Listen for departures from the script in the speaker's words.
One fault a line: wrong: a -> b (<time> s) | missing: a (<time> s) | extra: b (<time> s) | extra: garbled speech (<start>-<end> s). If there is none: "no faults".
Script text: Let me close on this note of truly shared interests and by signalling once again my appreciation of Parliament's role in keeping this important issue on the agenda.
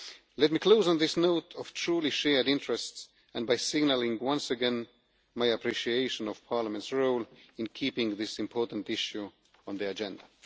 no faults